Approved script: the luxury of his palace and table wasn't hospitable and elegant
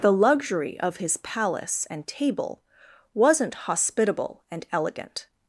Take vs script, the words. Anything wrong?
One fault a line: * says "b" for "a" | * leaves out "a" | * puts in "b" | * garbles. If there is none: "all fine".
all fine